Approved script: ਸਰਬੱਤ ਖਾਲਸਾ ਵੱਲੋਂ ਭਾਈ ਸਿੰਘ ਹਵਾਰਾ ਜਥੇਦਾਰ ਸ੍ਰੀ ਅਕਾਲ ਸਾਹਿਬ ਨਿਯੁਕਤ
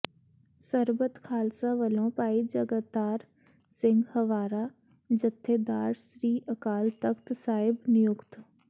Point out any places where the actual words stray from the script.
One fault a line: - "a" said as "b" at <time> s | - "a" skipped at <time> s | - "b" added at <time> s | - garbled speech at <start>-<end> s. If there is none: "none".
- "ਜਗਤਾਰ" added at 2.4 s
- "ਤਖ਼ਤ" added at 7.0 s